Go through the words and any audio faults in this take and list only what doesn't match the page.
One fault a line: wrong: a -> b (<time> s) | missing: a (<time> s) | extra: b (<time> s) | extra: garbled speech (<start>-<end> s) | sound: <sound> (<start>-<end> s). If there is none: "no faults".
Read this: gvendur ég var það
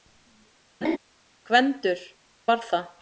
sound: laugh (0.8-1.0 s)
missing: ég (2.0 s)